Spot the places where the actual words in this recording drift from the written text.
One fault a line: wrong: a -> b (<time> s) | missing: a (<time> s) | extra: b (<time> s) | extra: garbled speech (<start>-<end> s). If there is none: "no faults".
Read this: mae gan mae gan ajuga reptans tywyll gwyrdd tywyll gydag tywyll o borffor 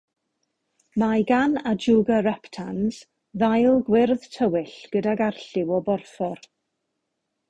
missing: mae gan (1.5 s)
wrong: tywyll -> ddail (3.4 s)
wrong: tywyll -> arlliw (5.3 s)